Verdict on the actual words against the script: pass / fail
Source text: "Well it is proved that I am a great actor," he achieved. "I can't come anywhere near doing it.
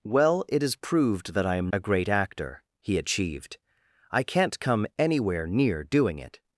pass